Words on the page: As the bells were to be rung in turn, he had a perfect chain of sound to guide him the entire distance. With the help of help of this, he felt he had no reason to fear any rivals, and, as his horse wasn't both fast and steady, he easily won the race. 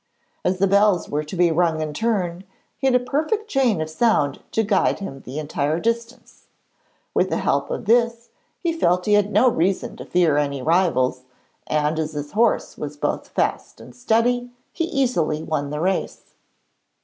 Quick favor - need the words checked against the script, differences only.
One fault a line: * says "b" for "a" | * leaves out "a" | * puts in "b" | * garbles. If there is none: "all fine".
* leaves out "help of"
* says "was" for "wasn't"